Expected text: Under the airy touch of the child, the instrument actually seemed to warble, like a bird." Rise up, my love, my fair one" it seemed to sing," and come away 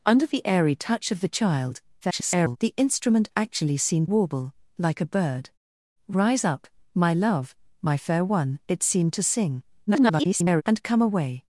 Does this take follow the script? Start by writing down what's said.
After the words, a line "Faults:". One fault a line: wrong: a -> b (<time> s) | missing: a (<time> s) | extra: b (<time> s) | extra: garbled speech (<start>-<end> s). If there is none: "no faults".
Under the airy touch of the child, [garbled] the instrument actually seemed warble, like a bird." Rise up, my love, my fair one" it seemed to sing," [garbled] and come away
Faults:
extra: garbled speech (2.0-2.6 s)
missing: to (4.1 s)
extra: garbled speech (9.9-10.6 s)